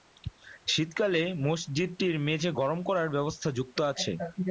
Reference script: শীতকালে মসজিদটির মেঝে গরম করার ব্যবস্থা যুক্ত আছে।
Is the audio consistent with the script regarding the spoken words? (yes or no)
yes